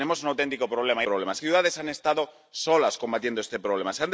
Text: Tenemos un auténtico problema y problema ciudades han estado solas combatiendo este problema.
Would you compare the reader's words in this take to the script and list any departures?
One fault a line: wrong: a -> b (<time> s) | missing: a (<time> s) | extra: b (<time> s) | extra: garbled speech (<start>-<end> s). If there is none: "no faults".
no faults